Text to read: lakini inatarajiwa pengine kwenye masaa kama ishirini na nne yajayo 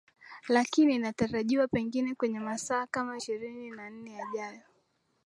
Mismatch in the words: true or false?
false